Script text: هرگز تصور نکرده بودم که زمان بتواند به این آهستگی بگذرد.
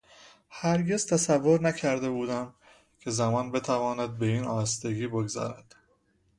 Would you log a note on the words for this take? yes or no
no